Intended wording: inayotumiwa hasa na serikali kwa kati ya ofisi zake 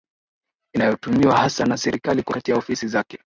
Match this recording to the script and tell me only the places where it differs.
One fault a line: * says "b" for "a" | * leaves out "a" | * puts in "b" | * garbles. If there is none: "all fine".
all fine